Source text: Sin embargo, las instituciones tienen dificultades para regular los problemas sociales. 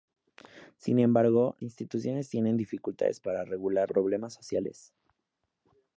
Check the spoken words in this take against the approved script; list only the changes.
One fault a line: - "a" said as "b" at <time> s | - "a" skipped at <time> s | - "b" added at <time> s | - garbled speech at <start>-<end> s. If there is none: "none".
- "las" skipped at 1.6 s
- "los" skipped at 3.9 s